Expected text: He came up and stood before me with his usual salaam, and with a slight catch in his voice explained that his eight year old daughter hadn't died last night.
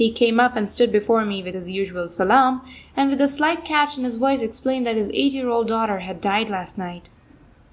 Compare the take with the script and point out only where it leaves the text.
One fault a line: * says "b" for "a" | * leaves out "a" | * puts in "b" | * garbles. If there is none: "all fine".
* says "had" for "hadn't"